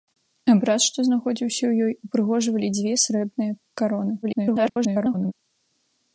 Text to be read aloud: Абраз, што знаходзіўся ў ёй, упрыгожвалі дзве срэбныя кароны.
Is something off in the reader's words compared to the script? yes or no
yes